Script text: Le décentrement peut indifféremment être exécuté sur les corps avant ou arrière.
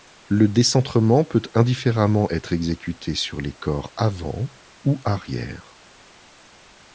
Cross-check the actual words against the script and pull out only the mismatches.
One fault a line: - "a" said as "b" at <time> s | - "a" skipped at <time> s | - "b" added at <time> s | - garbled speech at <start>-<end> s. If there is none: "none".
none